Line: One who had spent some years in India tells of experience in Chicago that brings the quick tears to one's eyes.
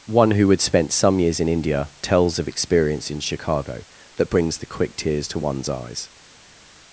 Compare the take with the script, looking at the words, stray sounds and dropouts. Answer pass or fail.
pass